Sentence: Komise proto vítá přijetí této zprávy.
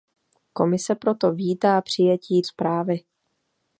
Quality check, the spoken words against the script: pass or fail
fail